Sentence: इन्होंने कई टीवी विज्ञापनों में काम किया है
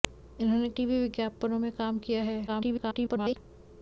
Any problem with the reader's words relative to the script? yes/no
yes